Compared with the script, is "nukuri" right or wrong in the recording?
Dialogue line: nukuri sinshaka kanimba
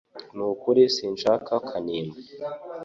right